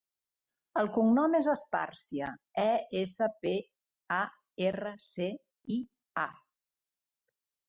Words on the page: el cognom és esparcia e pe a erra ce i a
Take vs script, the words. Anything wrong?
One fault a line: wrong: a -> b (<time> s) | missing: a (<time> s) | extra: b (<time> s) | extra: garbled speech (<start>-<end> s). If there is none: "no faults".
extra: essa (3.0 s)